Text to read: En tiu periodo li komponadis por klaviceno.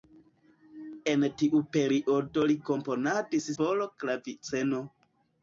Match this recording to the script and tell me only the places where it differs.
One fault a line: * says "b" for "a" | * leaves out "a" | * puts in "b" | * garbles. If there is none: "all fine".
all fine